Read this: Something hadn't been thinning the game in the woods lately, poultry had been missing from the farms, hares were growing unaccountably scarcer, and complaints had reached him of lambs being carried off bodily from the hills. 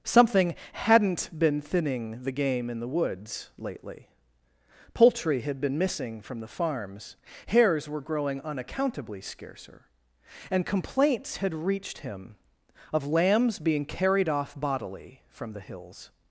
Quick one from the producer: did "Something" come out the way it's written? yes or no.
yes